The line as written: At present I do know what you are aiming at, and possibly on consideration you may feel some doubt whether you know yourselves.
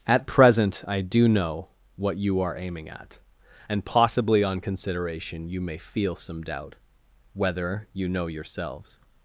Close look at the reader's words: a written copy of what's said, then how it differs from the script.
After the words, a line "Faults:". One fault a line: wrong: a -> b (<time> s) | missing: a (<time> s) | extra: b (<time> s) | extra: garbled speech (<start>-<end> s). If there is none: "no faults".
At present I do know what you are aiming at, and possibly on consideration you may feel some doubt whether you know yourselves.
Faults:
no faults